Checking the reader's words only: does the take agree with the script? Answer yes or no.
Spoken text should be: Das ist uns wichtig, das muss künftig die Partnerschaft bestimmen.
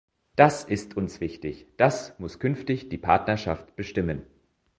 yes